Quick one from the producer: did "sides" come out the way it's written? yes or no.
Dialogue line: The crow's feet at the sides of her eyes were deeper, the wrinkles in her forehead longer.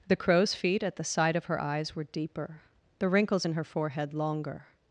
no